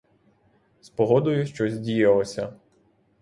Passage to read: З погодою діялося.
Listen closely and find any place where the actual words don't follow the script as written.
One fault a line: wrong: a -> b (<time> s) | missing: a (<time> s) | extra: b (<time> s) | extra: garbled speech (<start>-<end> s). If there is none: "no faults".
extra: щось (1.4 s)